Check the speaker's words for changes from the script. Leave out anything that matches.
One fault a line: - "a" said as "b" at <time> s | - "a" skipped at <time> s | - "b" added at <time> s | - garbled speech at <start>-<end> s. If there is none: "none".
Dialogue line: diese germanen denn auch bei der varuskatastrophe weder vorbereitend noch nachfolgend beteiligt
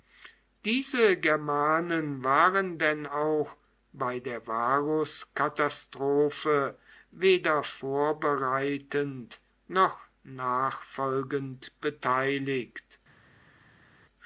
- "waren" added at 2.2 s